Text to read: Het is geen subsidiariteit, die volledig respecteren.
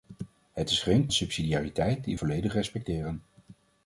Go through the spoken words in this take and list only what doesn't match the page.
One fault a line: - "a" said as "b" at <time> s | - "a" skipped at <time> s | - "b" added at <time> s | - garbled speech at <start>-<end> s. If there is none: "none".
none